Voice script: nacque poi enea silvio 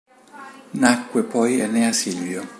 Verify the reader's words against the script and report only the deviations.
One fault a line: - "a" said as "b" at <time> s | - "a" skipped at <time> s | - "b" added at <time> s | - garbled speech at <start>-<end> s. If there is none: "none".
none